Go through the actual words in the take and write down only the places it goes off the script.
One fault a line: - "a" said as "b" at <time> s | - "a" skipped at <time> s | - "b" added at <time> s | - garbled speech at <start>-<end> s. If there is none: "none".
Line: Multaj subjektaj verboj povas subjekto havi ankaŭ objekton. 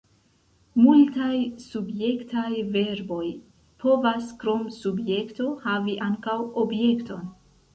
- "krom" added at 4.5 s